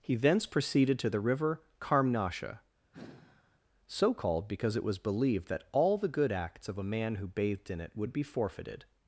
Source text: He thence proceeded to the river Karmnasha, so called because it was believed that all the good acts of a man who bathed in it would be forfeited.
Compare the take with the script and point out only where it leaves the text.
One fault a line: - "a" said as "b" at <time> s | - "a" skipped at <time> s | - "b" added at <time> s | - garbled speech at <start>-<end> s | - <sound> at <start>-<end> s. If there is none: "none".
- sigh at 2.9-3.6 s